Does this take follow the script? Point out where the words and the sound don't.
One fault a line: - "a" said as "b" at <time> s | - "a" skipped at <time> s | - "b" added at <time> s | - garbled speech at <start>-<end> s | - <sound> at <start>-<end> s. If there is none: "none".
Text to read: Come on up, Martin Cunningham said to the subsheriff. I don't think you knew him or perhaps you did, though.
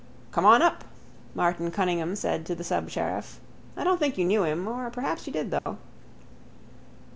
- dropout at 5.6-5.7 s